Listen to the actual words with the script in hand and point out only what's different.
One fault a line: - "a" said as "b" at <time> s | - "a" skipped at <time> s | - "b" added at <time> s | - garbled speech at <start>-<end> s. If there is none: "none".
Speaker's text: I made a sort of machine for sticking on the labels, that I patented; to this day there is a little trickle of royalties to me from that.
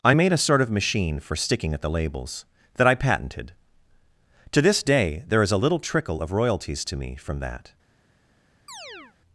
- "on" said as "at" at 1.7 s